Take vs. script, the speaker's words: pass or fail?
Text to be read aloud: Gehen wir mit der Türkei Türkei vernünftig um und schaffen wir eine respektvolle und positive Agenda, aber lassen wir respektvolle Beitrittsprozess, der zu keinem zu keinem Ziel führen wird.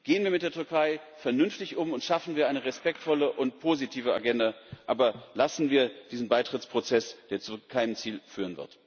fail